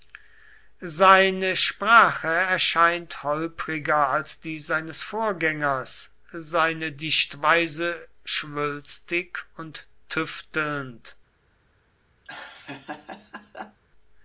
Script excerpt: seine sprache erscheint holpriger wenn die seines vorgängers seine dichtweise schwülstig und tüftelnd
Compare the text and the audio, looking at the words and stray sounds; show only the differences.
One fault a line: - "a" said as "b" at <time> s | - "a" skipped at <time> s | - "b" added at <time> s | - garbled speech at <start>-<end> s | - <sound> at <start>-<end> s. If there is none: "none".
- "wenn" said as "als" at 4.1 s
- laugh at 12.2-13.8 s